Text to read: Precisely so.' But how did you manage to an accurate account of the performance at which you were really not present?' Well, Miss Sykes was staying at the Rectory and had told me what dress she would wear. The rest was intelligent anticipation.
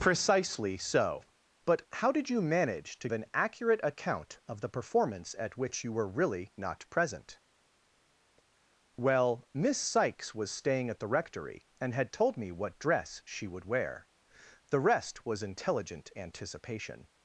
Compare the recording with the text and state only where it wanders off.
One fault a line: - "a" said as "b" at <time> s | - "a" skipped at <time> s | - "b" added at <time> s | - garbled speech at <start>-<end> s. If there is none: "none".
none